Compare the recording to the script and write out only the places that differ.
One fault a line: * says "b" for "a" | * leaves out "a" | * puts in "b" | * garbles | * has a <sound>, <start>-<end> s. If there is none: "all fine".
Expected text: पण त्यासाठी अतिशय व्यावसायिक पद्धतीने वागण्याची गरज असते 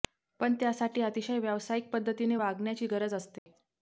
* has a dropout, 3.4-3.5 s